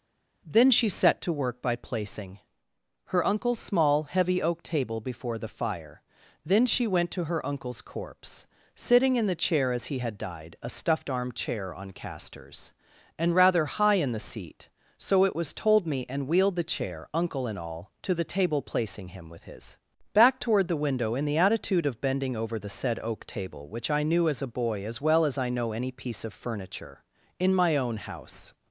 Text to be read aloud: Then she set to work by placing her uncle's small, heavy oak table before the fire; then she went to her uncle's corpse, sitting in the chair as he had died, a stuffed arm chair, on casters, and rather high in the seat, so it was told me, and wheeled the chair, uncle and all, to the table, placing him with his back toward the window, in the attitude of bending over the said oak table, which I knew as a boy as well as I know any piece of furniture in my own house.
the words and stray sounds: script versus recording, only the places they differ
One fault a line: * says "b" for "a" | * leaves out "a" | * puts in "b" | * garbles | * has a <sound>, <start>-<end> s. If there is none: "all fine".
all fine